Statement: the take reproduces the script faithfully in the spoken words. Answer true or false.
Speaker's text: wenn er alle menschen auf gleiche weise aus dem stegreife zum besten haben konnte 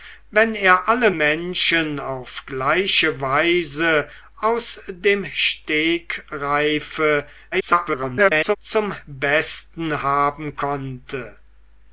false